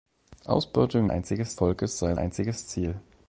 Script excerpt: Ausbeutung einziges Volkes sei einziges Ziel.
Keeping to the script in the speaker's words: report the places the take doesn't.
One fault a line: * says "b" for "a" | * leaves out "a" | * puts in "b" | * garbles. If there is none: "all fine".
all fine